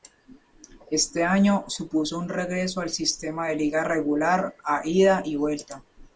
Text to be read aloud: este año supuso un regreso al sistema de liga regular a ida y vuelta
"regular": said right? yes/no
yes